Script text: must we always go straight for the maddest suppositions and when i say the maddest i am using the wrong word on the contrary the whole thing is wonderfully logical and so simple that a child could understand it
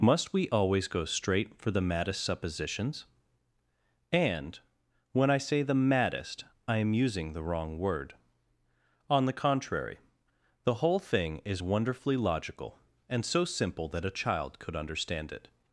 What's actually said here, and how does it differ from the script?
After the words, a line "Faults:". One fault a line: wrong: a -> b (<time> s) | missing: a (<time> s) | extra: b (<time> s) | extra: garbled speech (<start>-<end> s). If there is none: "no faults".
must we always go straight for the maddest suppositions and when i say the maddest i am using the wrong word on the contrary the whole thing is wonderfully logical and so simple that a child could understand it
Faults:
no faults